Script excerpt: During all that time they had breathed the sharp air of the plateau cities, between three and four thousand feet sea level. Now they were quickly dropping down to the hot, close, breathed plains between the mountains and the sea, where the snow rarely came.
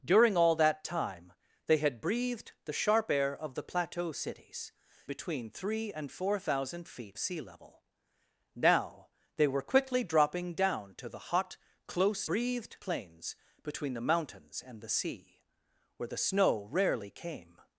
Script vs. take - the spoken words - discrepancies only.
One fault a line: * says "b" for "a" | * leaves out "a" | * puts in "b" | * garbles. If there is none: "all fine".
all fine